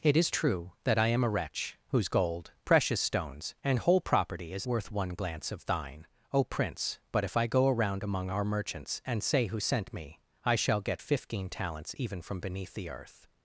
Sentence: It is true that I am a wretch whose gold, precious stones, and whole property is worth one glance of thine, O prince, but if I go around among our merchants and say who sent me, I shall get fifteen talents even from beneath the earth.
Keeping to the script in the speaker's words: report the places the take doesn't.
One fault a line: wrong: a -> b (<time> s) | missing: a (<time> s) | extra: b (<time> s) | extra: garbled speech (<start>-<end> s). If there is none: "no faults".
no faults